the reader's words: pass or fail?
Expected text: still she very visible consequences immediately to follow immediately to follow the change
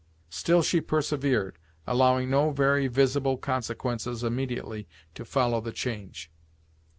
fail